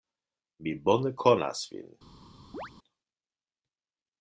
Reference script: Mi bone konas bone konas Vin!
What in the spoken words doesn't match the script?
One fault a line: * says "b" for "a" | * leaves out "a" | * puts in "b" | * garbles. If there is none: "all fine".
* leaves out "bone konas"